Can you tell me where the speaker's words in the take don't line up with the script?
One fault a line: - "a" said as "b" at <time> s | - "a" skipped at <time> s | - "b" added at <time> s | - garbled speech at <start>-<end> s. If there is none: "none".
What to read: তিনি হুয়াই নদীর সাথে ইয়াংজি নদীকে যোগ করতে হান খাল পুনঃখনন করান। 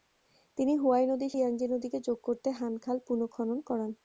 - "সাথে" skipped at 1.3 s